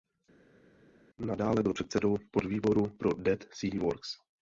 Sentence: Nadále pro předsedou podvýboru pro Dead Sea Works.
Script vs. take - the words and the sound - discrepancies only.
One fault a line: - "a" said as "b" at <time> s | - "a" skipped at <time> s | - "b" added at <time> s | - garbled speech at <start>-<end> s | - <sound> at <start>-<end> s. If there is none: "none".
- "pro" said as "byl" at 1.6 s